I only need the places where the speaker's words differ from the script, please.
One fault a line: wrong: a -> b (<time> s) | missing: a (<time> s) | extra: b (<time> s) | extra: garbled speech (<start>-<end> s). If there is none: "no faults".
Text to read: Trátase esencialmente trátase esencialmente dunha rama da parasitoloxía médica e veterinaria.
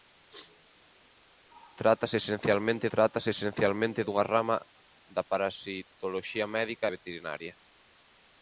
no faults